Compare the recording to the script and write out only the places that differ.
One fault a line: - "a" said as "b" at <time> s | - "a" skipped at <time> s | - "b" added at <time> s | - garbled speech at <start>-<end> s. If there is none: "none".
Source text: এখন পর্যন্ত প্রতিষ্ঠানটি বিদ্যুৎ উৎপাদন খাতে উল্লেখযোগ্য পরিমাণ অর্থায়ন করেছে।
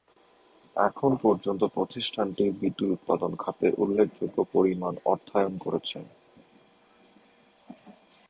none